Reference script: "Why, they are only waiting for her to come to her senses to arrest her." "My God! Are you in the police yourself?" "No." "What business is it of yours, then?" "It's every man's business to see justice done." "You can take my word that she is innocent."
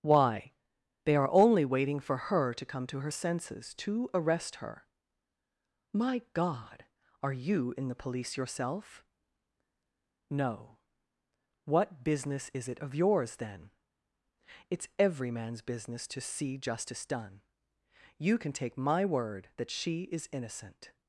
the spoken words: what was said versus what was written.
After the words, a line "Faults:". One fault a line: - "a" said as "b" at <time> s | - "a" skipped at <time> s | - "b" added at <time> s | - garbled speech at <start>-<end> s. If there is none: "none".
"Why, they are only waiting for her to come to her senses to arrest her." "My God! Are you in the police yourself?" "No." "What business is it of yours, then?" "It's every man's business to see justice done." "You can take my word that she is innocent."
Faults:
none